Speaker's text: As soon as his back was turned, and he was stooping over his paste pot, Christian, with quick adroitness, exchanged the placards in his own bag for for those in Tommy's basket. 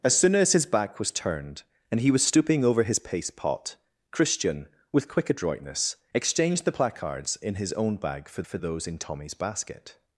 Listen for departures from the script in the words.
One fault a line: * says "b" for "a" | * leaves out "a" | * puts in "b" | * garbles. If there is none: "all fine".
all fine